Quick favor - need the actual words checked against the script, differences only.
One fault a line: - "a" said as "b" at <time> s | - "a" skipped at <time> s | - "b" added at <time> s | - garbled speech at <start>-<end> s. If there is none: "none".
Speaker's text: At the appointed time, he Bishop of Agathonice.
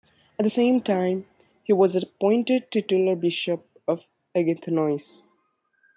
- "appointed" said as "same" at 0.5 s
- "was appointed Titular" added at 1.7 s